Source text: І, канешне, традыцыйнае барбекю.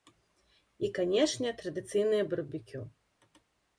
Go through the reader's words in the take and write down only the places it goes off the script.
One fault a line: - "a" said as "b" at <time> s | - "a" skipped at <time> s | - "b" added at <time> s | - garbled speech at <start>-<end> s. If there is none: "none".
none